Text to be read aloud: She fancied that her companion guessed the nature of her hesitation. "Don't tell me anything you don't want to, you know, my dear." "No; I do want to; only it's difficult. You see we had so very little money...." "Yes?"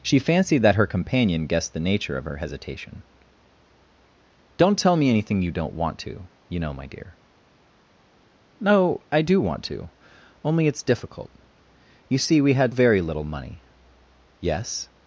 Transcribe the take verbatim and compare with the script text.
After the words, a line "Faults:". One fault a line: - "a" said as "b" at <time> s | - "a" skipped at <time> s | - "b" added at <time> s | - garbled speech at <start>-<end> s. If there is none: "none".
She fancied that her companion guessed the nature of her hesitation. "Don't tell me anything you don't want to, you know, my dear." "No; I do want to; only it's difficult. You see we had very little money...." "Yes?"
Faults:
- "so" skipped at 12.8 s